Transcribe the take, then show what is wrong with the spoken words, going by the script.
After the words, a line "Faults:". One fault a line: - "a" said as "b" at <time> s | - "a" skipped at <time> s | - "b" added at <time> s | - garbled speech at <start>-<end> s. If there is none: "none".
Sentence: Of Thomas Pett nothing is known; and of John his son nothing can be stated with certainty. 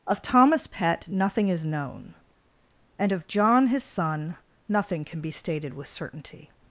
Of Thomas Pett nothing is known; and of John his son nothing can be stated with certainty.
Faults:
none